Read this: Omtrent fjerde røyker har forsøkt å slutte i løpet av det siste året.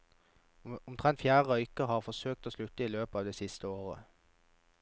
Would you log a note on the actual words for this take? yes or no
no